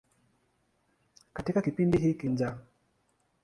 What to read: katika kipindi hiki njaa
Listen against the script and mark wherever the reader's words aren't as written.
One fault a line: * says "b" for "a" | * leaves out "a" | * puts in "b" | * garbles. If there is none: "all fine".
all fine